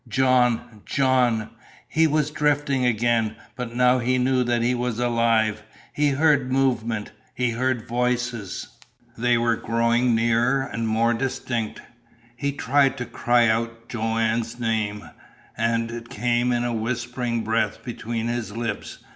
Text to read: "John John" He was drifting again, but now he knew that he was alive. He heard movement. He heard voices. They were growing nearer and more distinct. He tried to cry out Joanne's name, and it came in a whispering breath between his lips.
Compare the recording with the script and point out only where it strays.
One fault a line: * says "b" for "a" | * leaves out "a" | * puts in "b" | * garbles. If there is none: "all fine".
all fine